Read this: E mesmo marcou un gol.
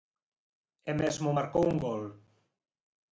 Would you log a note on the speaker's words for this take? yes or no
no